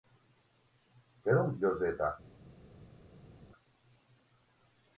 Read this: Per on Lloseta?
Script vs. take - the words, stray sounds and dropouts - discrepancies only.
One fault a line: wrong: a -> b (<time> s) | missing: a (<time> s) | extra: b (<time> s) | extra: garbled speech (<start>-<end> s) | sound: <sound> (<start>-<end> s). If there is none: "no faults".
no faults